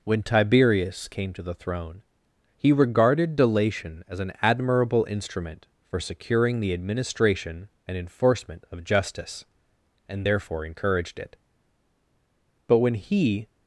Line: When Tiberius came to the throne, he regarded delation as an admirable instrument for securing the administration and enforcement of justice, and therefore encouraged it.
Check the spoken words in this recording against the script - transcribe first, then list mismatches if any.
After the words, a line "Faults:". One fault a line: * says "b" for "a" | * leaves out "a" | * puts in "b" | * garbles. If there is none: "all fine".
When Tiberius came to the throne, he regarded delation as an admirable instrument for securing the administration and enforcement of justice, and therefore encouraged it. But when he
Faults:
* puts in "But when he"